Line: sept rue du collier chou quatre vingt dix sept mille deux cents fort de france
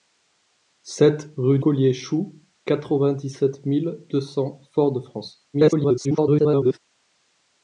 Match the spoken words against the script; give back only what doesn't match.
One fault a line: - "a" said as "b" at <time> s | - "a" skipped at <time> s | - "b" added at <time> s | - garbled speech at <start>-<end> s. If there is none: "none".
- "du" skipped at 1.6 s
- garbled speech at 5.5-6.8 s